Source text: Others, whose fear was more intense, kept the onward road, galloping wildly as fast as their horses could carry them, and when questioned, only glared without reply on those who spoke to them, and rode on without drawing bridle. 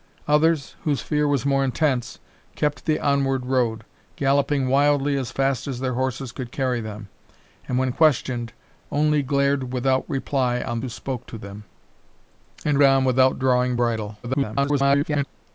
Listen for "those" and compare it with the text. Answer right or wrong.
wrong